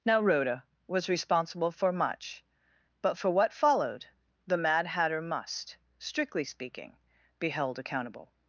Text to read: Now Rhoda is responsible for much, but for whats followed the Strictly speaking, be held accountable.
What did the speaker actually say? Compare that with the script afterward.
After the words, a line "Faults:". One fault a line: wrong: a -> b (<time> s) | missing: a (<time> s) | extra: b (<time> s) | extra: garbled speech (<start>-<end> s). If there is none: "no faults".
Now Rhoda was responsible for much, but for what followed the Mad Hatter must, strictly speaking, be held accountable.
Faults:
wrong: is -> was (0.9 s)
wrong: whats -> what (3.3 s)
extra: Mad Hatter must (4.6 s)